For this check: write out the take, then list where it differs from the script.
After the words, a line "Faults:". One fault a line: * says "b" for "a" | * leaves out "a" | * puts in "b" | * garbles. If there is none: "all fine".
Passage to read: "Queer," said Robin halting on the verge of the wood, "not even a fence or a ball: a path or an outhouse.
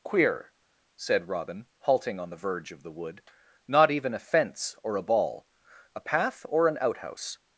"Queer," said Robin halting on the verge of the wood, "not even a fence or a ball: a path or an outhouse.
Faults:
all fine